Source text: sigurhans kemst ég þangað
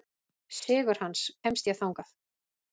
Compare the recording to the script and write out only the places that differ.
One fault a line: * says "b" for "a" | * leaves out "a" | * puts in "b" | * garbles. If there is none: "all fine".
all fine